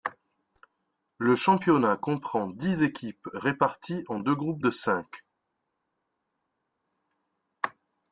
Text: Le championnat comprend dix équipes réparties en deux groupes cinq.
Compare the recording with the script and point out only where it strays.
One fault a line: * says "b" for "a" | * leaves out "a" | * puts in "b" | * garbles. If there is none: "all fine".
* puts in "de"